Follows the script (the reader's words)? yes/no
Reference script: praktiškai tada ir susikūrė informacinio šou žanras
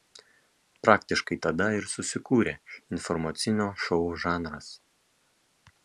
yes